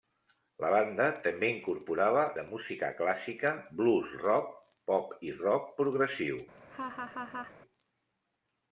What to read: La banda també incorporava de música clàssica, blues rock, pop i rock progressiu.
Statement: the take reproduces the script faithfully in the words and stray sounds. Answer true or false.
false